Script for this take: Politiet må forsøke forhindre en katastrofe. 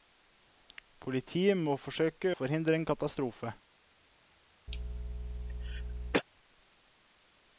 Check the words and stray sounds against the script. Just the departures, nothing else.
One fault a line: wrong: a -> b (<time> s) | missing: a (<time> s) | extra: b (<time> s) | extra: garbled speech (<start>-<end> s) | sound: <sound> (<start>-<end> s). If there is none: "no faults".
sound: cough (4.7-6.2 s)